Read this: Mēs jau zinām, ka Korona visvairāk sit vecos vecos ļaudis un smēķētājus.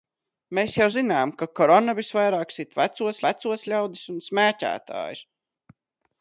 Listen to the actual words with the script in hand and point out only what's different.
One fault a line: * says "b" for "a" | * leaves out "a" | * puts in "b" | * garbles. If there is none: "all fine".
all fine